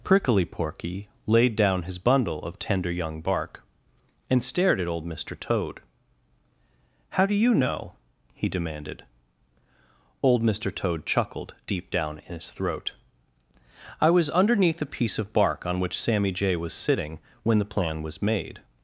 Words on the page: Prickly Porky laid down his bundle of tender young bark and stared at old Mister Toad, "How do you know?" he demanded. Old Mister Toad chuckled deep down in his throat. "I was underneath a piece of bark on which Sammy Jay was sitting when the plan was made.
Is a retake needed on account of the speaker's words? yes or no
no